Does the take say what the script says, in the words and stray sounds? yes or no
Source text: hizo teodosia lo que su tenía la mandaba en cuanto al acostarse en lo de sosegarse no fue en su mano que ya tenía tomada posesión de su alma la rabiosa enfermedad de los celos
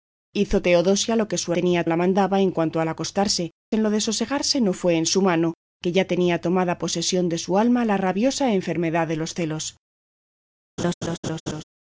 no